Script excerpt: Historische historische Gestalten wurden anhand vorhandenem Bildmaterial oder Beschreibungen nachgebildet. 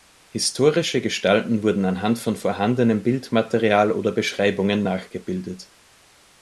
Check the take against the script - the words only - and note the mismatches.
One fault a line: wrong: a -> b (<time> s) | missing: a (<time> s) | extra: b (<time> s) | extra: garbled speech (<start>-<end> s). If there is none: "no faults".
missing: historische (1.0 s)
extra: von (2.2 s)